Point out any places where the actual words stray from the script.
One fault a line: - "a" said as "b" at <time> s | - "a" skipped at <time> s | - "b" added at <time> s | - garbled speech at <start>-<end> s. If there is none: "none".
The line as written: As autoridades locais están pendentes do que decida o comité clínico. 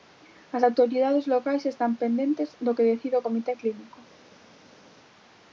none